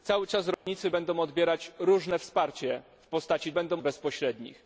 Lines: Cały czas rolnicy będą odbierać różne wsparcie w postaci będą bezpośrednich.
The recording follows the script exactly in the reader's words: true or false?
true